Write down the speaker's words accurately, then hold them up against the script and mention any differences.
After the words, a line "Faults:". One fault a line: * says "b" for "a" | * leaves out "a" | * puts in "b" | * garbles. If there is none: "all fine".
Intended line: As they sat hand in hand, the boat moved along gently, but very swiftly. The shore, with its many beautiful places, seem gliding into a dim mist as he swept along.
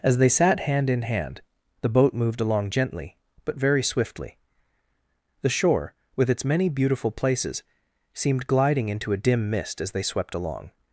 As they sat hand in hand, the boat moved along gently, but very swiftly. The shore, with its many beautiful places, seemed gliding into a dim mist as they swept along.
Faults:
* says "seemed" for "seem"
* says "they" for "he"